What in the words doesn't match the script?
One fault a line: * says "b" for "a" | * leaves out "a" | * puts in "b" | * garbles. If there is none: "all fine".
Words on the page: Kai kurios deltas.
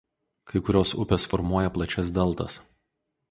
* puts in "upės formuoja plačias"